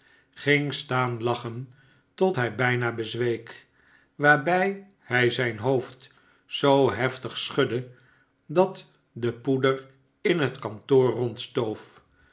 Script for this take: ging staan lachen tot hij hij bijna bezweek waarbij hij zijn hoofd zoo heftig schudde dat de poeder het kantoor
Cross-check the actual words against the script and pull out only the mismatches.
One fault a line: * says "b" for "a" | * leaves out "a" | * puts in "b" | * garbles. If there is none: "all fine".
* leaves out "hij"
* puts in "in"